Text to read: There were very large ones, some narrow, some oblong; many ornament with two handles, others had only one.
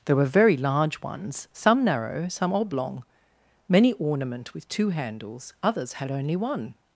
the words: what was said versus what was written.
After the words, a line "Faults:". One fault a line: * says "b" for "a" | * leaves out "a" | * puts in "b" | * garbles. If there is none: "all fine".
There were very large ones, some narrow, some oblong; many ornament with two handles, others had only one.
Faults:
all fine